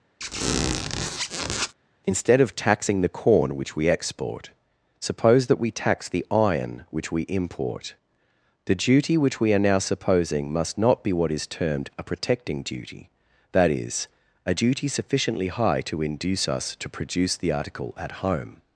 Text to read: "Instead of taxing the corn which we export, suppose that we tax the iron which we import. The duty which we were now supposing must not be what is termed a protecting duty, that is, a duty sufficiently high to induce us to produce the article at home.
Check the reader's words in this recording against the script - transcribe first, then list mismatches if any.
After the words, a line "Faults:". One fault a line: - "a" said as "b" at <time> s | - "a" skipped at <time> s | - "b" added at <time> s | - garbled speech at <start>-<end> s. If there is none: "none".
"Instead of taxing the corn which we export, suppose that we tax the iron which we import. The duty which we are now supposing must not be what is termed a protecting duty, that is, a duty sufficiently high to induce us to produce the article at home.
Faults:
- "were" said as "are" at 9.5 s